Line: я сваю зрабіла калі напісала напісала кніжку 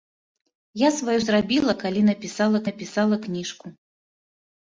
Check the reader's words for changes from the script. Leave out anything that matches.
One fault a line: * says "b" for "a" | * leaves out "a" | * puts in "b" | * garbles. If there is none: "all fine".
all fine